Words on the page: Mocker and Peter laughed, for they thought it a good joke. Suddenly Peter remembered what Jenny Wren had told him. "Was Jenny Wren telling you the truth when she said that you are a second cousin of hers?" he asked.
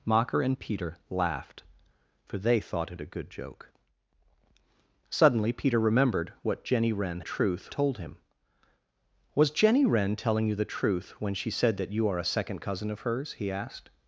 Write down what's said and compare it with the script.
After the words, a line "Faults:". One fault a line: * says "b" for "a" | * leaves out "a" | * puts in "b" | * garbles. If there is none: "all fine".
Mocker and Peter laughed, for they thought it a good joke. Suddenly Peter remembered what Jenny Wren truth told him. "Was Jenny Wren telling you the truth when she said that you are a second cousin of hers?" he asked.
Faults:
* says "truth" for "had"